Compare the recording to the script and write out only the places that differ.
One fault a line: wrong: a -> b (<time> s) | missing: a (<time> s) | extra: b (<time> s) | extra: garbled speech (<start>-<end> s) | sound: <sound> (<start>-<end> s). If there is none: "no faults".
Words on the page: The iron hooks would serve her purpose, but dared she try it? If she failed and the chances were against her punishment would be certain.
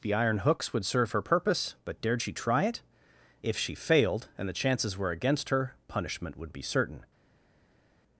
no faults